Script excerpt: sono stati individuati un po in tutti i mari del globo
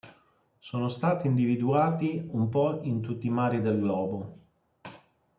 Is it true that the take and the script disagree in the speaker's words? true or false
false